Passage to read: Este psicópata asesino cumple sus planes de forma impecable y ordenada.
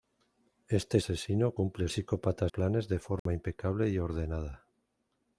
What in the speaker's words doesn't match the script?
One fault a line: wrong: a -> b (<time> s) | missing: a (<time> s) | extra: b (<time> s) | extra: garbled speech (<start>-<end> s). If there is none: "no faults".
missing: psicópata (1.0 s)
wrong: sus -> psicópata (1.9 s)